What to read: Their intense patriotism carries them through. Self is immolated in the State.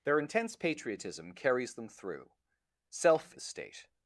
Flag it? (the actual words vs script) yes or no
yes